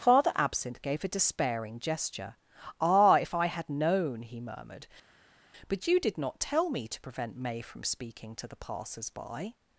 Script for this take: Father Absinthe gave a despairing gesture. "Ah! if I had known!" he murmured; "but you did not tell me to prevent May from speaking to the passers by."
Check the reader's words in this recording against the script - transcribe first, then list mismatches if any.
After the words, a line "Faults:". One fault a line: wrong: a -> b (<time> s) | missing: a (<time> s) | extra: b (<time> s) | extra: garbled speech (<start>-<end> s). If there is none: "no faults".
Father Absinthe gave a despairing gesture. "Ah! if I had known!" he murmured; "but you did not tell me to prevent May from speaking to the passers by."
Faults:
no faults